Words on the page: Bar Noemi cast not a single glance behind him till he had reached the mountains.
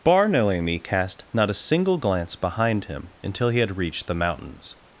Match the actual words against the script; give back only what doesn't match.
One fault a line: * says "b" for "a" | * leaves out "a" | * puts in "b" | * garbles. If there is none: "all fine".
* says "until" for "till"